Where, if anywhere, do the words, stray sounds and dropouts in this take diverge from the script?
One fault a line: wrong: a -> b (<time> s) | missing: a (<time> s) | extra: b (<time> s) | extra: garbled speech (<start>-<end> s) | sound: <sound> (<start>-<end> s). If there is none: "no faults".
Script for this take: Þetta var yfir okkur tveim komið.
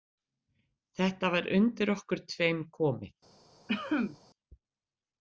wrong: yfir -> undir (1.6 s)
sound: cough (3.7-4.2 s)